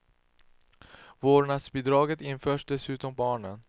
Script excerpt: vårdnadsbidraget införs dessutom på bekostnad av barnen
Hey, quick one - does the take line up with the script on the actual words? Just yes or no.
no